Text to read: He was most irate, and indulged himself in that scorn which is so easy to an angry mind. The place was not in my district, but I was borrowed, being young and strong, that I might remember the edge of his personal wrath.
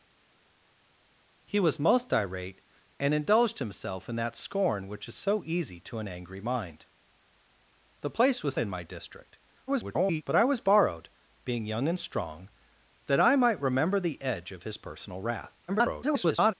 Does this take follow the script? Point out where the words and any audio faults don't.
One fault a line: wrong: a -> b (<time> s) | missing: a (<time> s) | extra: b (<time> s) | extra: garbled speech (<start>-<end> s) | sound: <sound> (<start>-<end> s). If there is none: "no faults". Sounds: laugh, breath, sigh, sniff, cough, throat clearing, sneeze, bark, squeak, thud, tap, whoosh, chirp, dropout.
missing: not (8.6 s)
extra: garbled speech (9.7-10.2 s)
extra: garbled speech (15.7-16.5 s)